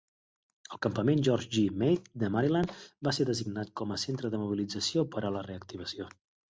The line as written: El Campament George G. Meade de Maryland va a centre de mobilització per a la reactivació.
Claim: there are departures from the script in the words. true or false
true